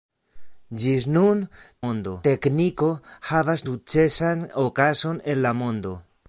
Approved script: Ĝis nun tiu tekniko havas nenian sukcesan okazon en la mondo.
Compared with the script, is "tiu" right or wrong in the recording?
wrong